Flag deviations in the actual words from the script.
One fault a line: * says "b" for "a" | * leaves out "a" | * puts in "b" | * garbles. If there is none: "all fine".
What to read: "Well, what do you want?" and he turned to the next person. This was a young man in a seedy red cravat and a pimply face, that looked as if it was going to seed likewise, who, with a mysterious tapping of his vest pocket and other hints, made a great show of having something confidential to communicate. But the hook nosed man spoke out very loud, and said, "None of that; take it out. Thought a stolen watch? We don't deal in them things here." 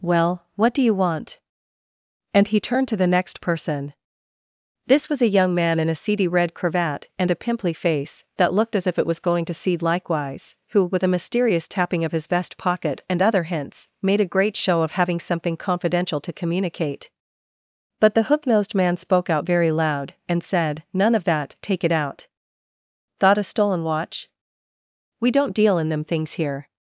all fine